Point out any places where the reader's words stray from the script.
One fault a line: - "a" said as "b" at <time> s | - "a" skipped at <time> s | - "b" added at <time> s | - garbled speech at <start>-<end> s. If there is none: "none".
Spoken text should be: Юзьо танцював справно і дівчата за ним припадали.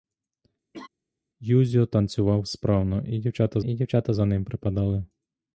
- "і дівчата" added at 3.6 s